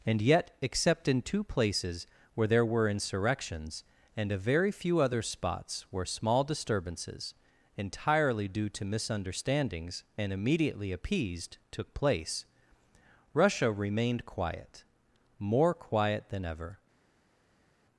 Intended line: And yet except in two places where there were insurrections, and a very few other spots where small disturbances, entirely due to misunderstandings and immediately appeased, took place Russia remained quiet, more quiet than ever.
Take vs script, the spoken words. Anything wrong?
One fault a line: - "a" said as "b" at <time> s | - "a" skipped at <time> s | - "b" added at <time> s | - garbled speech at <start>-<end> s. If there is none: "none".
none